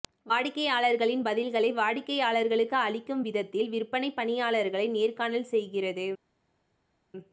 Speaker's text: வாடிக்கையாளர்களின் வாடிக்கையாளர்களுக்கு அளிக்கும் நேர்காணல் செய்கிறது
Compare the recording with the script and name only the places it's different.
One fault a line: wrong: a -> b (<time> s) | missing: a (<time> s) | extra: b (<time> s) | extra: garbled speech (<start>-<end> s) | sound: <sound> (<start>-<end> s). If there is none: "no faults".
extra: பதில்களை (1.2 s)
extra: விதத்தில் விற்பனை பணியாளர்களை (3.2 s)